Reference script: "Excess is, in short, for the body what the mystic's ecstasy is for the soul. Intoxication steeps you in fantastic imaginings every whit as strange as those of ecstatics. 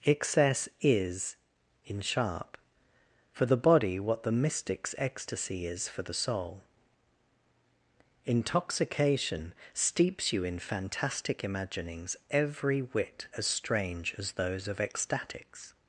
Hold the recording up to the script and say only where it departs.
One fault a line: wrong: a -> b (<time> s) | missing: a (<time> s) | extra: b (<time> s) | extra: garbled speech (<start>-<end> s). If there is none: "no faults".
wrong: short -> sharp (2.0 s)